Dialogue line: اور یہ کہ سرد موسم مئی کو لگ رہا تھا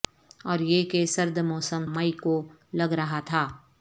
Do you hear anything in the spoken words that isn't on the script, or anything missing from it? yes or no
no